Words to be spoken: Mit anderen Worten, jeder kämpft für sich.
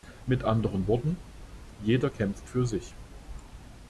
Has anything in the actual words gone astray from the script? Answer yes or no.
no